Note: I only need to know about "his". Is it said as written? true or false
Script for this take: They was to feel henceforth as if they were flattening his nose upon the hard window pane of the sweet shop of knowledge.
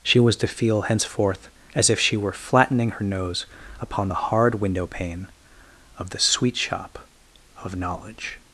false